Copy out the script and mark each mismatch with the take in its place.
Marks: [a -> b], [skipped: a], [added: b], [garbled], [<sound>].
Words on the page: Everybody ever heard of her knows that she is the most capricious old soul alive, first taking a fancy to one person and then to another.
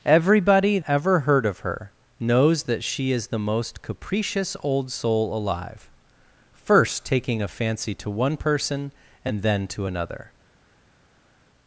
Everybody ever heard of her knows that she is the most capricious old soul alive, first taking a fancy to one person and then to another.